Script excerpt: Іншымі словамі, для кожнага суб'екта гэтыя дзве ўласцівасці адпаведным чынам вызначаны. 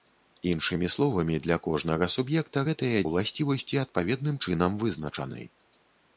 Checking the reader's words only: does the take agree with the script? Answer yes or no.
no